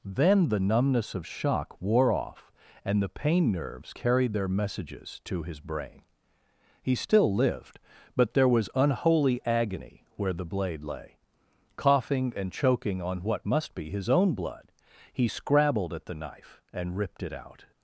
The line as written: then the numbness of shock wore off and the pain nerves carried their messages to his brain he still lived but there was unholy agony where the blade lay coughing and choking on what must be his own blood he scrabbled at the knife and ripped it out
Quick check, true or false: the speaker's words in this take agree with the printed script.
true